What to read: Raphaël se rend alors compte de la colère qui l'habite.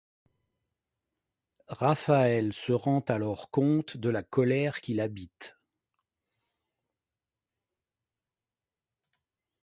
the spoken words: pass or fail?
pass